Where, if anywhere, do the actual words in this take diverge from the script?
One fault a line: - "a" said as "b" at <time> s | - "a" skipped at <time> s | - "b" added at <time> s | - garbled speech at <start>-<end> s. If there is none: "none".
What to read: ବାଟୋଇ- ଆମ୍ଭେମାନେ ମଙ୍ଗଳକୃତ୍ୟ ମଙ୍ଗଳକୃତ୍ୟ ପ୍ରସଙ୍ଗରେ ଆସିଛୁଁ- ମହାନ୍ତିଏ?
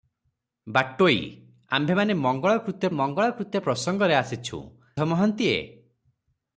none